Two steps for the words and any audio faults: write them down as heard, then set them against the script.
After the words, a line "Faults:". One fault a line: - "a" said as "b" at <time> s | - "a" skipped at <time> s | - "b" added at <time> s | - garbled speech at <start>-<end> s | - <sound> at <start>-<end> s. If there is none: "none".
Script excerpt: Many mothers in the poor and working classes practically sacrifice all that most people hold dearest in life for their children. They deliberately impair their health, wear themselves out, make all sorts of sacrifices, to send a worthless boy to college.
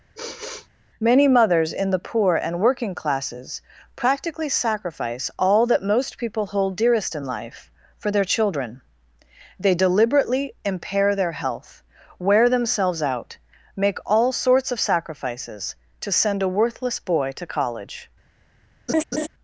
Many mothers in the poor and working classes practically sacrifice all that most people hold dearest in life for their children. They deliberately impair their health, wear themselves out, make all sorts of sacrifices, to send a worthless boy to college.
Faults:
- sigh at 0.1-0.7 s
- laugh at 18.9-19.3 s